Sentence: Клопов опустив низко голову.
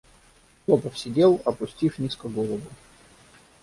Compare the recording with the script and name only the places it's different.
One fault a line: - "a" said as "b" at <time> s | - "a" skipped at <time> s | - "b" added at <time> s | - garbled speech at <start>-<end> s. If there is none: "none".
- "сидел" added at 1.0 s